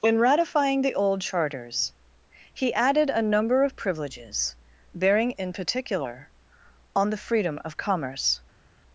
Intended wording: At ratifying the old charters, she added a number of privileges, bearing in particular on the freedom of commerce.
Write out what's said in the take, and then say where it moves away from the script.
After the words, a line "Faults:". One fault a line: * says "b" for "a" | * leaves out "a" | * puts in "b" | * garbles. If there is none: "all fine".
In ratifying the old charters, he added a number of privileges, bearing in particular on the freedom of commerce.
Faults:
* says "In" for "At"
* says "he" for "she"